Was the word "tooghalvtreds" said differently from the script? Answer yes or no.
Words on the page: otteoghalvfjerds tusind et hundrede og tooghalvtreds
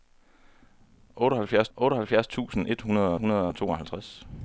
no